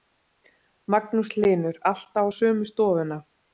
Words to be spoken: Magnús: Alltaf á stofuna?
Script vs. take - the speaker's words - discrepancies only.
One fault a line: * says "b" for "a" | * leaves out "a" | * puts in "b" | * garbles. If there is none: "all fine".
* puts in "Hlynur"
* puts in "sömu"